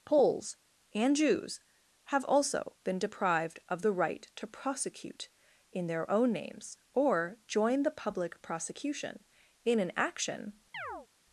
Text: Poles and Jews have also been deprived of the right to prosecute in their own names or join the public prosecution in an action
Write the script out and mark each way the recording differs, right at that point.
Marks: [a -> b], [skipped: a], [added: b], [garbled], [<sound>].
Poles and Jews have also been deprived of the right to prosecute in their own names or join the public prosecution in an action [chirp]